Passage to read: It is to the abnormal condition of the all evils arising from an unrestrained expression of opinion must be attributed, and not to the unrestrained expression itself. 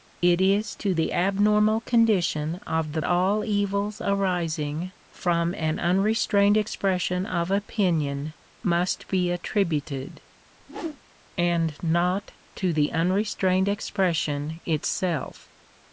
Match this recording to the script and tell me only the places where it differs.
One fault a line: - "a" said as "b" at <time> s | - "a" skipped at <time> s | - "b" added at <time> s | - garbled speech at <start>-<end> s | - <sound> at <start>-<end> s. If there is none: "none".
- whoosh at 10.6-11.0 s